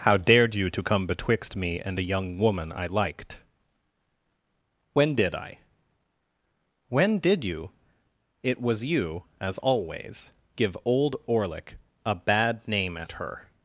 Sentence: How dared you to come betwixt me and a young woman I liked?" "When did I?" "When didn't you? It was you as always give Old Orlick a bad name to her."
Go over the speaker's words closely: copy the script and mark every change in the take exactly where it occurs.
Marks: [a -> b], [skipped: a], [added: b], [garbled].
How dared you to come betwixt me and a young woman I liked?" "When did I?" "When [didn't -> did] you? It was you as always give Old Orlick a bad name [to -> at] her."